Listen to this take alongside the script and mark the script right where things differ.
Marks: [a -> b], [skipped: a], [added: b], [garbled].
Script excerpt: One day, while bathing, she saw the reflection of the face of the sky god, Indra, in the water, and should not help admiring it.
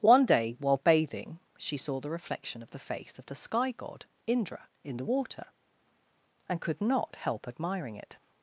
One day, while bathing, she saw the reflection of the face of the sky god, Indra, in the water, and [should -> could] not help admiring it.